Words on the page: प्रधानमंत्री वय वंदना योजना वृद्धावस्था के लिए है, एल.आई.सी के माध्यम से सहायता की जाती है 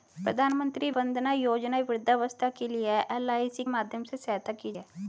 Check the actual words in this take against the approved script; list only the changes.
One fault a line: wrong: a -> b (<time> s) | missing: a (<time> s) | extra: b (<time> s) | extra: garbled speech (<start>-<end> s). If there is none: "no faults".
missing: वय (0.9 s)
missing: के (3.6 s)
missing: जाती (4.7 s)